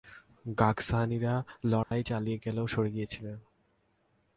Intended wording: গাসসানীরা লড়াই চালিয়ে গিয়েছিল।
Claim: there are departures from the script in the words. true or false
true